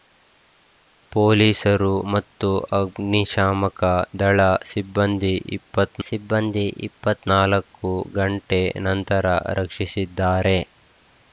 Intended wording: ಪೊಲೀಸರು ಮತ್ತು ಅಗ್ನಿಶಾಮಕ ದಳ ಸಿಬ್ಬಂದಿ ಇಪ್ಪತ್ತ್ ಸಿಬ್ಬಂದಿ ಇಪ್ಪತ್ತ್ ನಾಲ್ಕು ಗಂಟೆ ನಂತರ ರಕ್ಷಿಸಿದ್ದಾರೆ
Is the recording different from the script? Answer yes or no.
no